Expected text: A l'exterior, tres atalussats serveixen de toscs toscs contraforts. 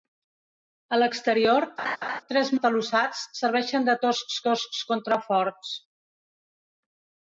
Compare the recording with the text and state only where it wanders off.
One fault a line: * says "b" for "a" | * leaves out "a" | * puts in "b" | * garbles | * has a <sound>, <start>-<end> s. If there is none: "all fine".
* has a laugh, 1.8-2.2 s